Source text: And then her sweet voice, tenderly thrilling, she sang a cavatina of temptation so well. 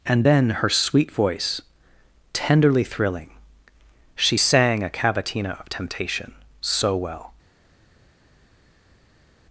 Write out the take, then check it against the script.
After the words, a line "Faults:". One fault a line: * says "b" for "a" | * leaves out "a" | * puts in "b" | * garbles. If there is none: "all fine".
And then her sweet voice, tenderly thrilling, she sang a cavatina of temptation so well.
Faults:
all fine